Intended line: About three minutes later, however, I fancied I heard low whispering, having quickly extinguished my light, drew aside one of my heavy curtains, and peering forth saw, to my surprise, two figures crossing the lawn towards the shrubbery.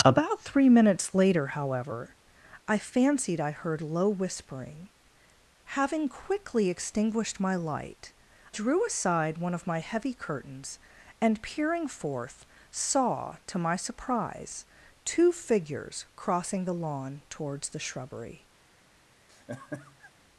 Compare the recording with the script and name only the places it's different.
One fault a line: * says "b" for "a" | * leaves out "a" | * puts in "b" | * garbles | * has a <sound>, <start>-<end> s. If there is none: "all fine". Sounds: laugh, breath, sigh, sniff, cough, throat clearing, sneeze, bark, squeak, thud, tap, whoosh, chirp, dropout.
* has a laugh, 19.3-20.1 s